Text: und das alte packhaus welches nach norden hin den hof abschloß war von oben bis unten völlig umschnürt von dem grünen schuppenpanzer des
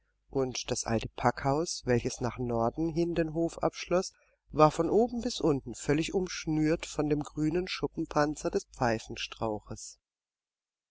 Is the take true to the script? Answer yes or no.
yes